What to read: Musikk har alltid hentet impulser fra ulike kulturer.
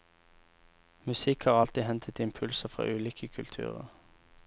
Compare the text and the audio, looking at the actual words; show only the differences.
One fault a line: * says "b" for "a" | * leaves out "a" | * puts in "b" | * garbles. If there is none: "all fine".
all fine